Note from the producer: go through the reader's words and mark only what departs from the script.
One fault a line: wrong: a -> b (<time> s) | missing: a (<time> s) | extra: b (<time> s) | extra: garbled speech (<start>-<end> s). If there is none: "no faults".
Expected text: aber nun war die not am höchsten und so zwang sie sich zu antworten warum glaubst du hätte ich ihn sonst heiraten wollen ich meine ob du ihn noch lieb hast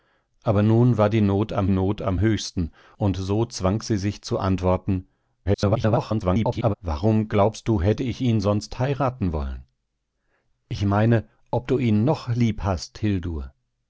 extra: not am (1.7 s)
extra: garbled speech (5.5-6.7 s)